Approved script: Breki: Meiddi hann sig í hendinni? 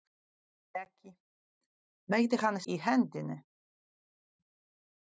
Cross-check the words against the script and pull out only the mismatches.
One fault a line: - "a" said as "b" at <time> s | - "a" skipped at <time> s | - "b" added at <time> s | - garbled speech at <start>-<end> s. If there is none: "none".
- "sig" skipped at 2.6 s